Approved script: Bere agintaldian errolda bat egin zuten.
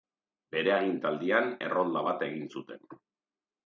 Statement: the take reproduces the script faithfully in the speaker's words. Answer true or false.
true